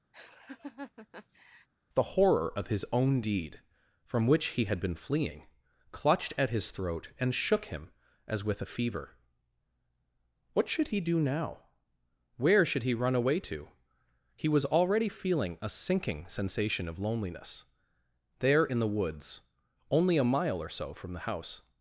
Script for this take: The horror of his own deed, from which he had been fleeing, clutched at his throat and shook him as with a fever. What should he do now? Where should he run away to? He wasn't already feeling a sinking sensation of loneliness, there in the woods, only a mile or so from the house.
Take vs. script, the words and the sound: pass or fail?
fail